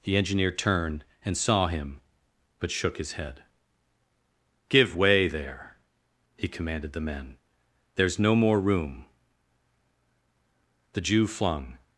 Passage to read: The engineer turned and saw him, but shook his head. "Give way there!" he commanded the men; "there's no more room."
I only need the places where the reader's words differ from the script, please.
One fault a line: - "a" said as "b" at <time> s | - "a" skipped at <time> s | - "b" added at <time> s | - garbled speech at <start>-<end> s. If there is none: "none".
- "The Jew flung" added at 10.9 s